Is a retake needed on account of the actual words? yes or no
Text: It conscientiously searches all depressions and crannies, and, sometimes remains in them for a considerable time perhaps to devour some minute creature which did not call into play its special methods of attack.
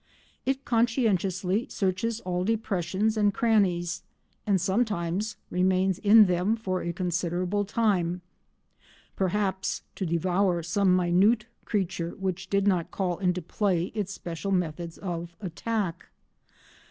no